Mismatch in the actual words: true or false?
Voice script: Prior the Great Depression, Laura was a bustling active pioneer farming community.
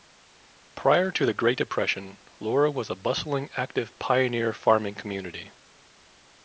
true